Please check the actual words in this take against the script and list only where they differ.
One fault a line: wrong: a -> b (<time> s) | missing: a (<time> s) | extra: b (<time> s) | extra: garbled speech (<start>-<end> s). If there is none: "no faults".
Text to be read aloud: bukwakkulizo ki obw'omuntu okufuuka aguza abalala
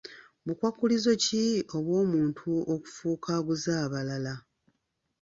no faults